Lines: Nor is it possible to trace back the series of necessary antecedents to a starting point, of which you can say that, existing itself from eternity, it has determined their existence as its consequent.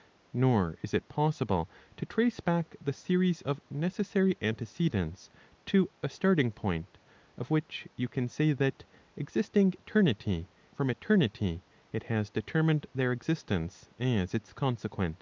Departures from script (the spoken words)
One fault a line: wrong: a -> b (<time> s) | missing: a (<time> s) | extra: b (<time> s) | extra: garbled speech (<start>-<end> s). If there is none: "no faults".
wrong: itself -> eternity (9.8 s)